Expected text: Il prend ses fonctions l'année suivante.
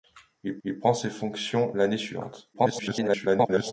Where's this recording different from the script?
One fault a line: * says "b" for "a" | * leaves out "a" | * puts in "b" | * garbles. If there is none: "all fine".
* puts in "il"
* garbles